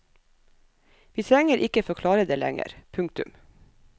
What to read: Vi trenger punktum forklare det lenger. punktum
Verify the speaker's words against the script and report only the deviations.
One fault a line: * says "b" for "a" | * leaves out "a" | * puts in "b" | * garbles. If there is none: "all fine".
* says "ikke" for "punktum"